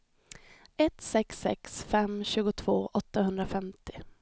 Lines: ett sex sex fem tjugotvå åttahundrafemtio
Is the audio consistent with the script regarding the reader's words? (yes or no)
yes